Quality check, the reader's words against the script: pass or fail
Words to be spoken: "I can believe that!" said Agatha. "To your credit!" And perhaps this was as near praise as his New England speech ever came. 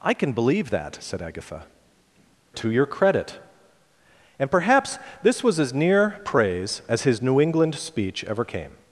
pass